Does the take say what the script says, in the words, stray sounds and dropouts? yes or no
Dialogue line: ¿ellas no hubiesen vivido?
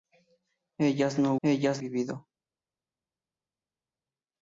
no